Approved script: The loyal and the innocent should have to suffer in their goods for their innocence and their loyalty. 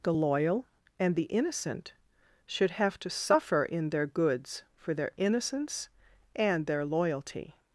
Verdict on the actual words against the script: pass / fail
pass